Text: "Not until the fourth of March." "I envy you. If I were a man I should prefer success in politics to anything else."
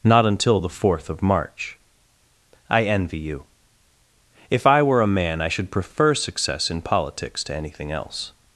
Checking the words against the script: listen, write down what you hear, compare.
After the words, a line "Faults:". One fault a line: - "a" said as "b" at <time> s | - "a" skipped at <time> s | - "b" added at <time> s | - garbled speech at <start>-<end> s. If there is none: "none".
"Not until the fourth of March." "I envy you. If I were a man I should prefer success in politics to anything else."
Faults:
none